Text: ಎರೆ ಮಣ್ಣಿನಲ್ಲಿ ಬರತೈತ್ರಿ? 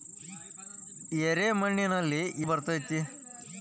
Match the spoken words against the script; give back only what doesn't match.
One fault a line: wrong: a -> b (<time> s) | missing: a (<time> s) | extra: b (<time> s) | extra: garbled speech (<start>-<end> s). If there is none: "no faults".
no faults